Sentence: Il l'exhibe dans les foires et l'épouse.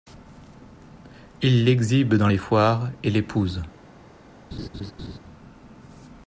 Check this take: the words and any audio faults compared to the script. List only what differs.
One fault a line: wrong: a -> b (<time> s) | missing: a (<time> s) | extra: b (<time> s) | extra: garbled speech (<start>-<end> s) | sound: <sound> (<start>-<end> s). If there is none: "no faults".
sound: laugh (4.5-5.2 s)